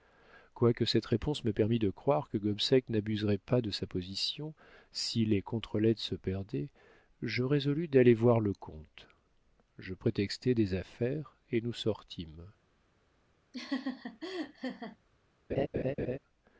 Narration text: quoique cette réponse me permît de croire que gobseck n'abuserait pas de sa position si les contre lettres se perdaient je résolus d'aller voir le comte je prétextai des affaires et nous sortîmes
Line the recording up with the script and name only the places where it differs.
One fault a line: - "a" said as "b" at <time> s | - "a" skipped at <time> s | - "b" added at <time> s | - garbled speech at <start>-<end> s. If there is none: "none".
none